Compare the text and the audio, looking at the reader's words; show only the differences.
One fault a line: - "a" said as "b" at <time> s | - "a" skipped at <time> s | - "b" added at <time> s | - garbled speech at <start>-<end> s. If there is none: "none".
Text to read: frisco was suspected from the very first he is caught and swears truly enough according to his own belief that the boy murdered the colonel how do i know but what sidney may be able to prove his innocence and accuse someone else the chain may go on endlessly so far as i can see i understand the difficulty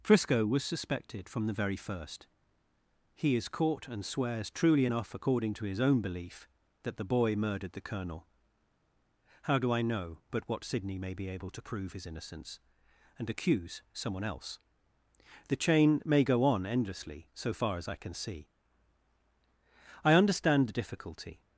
none